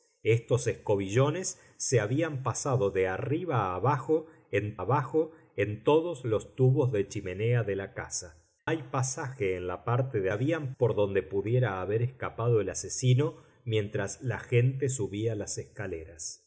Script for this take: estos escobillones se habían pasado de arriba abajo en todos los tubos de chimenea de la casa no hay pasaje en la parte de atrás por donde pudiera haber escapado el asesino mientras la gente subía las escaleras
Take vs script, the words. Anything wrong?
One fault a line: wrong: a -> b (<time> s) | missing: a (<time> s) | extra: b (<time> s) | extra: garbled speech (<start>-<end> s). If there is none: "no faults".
extra: abajo en (4.8 s)
missing: no (8.3 s)
wrong: atrás -> habían (10.3 s)